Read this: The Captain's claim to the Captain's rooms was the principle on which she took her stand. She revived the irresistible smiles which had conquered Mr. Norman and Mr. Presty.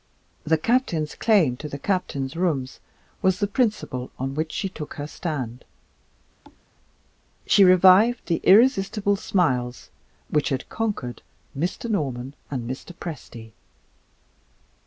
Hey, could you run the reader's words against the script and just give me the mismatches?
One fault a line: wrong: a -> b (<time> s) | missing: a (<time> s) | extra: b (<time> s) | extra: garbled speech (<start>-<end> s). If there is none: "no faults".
no faults